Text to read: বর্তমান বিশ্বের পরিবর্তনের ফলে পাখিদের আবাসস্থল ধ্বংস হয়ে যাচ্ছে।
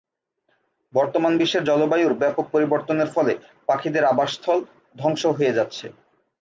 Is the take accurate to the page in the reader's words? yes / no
no